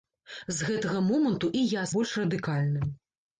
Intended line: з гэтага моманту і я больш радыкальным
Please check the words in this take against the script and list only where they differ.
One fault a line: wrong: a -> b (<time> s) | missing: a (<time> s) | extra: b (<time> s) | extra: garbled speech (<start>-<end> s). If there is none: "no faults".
no faults